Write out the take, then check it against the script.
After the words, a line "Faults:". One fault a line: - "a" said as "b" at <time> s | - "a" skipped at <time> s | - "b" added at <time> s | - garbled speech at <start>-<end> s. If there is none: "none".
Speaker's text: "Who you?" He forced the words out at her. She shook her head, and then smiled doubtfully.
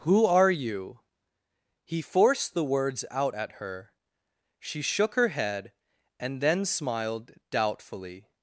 "Who are you?" He forced the words out at her. She shook her head, and then smiled doubtfully.
Faults:
- "are" added at 0.2 s